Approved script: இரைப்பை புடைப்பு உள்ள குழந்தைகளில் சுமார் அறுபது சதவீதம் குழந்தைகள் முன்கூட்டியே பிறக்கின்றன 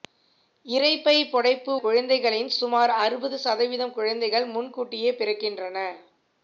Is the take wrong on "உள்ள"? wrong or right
wrong